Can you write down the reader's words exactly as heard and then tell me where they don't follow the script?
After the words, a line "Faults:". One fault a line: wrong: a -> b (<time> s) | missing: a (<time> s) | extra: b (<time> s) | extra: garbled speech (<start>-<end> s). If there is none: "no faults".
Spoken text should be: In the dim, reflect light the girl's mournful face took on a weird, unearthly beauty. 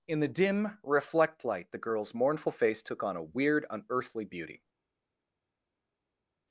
In the dim, reflect light the girl's mournful face took on a weird, unearthly beauty.
Faults:
no faults